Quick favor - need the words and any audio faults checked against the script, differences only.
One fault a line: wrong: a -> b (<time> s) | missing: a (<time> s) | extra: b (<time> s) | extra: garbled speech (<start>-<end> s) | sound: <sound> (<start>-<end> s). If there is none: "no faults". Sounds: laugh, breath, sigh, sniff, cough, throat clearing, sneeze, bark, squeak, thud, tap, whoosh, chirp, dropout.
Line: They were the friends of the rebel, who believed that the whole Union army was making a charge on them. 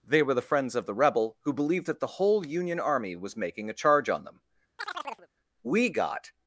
sound: chirp (4.8-5.3 s)
extra: We got (5.6 s)